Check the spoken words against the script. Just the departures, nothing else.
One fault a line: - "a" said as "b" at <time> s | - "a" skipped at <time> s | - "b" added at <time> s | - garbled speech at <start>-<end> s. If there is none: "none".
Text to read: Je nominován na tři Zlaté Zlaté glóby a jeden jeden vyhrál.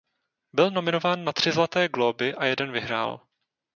- "Je" said as "Byl" at 0.5 s
- "Zlaté" skipped at 1.9 s
- "jeden" skipped at 2.7 s